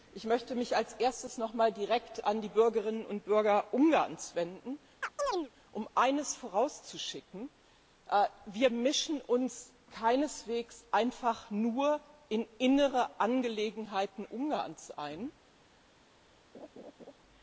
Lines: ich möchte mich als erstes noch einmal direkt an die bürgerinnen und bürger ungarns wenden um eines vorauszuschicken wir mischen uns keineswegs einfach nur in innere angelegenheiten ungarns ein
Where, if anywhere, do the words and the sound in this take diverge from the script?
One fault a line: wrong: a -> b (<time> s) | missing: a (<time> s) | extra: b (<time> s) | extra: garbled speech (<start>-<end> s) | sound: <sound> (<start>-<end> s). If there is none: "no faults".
sound: chirp (5.0-5.5 s)
sound: laugh (16.5-17.1 s)